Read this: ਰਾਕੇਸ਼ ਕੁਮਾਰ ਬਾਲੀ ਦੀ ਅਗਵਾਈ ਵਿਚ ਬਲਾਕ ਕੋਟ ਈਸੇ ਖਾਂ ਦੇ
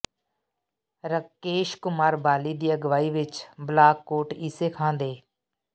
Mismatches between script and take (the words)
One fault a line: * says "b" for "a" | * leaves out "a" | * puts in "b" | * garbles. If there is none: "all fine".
all fine